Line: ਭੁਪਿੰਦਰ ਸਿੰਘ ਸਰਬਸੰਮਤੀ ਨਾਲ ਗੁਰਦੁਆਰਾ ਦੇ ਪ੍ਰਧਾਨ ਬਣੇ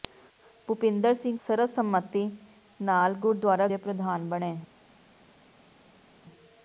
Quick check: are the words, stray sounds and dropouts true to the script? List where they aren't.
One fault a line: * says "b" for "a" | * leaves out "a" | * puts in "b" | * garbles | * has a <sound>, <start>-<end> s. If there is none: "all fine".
all fine